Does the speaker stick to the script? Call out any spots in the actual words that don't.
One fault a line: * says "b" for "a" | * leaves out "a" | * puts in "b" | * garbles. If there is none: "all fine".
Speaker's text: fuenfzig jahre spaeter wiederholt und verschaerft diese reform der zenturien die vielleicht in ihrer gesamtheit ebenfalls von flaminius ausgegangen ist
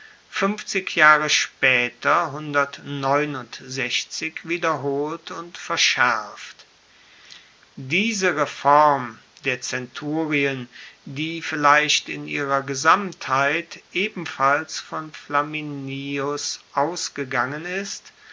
all fine